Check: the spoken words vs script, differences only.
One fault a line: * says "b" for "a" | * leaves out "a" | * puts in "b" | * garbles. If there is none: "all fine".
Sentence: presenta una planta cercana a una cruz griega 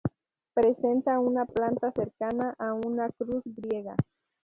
all fine